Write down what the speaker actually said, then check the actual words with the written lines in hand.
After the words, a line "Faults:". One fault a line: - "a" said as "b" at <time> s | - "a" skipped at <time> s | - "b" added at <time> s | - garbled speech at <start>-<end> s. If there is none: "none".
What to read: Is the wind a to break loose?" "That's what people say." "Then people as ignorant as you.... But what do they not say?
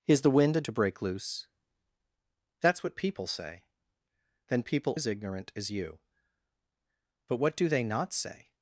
Is the wind a to break loose?" "That's what people say." "Then people as ignorant as you.... But what do they not say?
Faults:
none